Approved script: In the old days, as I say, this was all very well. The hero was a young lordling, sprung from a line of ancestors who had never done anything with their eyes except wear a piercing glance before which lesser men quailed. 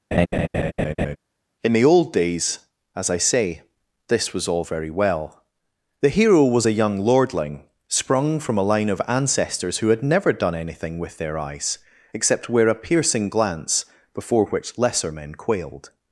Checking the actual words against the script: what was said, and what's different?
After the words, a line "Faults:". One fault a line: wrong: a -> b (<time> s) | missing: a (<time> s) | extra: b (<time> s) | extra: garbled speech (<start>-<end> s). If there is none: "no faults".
In the old days, as I say, this was all very well. The hero was a young lordling, sprung from a line of ancestors who had never done anything with their eyes except wear a piercing glance before which lesser men quailed.
Faults:
no faults